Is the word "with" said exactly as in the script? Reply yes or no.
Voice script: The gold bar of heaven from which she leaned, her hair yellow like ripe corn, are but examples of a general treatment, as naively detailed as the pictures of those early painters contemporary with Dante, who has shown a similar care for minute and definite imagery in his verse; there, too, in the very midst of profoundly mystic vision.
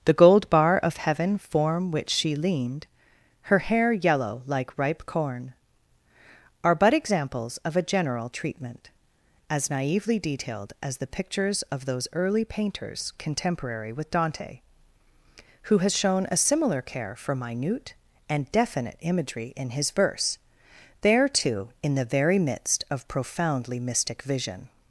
yes